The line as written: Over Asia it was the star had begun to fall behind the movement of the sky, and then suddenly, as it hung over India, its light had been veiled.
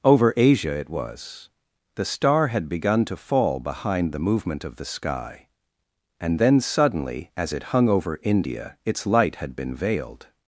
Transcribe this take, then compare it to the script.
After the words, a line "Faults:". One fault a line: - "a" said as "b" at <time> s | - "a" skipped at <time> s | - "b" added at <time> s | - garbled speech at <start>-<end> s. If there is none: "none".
Over Asia it was the star had begun to fall behind the movement of the sky, and then suddenly, as it hung over India, its light had been veiled.
Faults:
none